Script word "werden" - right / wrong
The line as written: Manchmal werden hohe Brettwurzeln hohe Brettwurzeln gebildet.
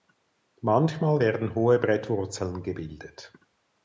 right